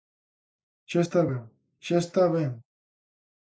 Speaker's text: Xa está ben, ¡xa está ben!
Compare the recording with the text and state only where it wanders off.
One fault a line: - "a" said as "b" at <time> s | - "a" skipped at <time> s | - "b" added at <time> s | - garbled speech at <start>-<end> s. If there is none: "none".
none